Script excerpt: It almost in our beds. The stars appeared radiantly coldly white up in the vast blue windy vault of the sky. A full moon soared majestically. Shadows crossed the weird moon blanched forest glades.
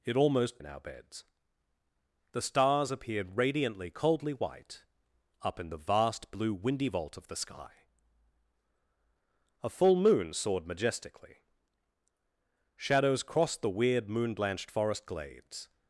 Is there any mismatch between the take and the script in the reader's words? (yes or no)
no